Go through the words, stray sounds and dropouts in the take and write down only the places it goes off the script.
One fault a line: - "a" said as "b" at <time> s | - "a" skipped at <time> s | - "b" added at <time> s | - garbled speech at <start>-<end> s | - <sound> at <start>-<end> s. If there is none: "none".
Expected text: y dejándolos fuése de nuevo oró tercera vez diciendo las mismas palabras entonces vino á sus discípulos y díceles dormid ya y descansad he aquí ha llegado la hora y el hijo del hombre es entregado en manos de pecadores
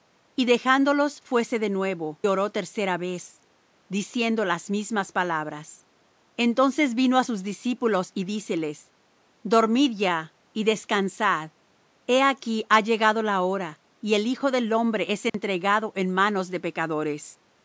- dropout at 15.3-15.3 s